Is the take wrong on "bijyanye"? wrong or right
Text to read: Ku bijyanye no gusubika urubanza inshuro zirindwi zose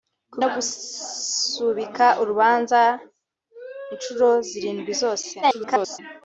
wrong